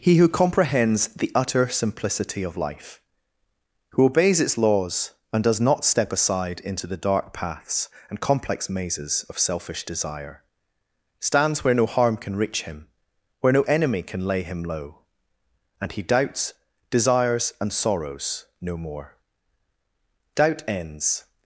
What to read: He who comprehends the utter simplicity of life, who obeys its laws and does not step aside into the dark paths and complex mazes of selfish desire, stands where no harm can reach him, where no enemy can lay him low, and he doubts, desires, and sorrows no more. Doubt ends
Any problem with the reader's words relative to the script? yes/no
no